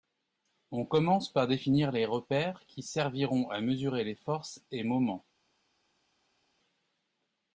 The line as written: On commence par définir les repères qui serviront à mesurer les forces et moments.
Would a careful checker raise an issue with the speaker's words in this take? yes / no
no